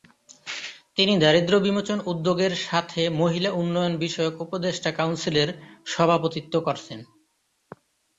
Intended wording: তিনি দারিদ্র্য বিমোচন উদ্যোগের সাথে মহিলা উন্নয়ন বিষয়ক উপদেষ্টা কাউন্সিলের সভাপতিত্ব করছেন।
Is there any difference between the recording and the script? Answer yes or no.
no